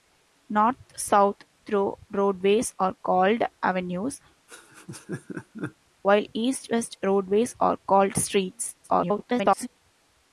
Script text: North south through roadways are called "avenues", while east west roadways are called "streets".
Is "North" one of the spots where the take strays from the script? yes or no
no